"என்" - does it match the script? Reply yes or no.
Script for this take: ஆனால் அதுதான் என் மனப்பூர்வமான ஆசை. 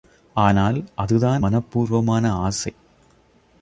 no